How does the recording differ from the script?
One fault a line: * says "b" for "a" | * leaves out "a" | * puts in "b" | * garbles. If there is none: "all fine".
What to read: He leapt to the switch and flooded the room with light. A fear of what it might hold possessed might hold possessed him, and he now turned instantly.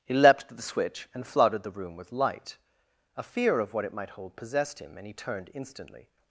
* leaves out "might hold possessed"
* leaves out "now"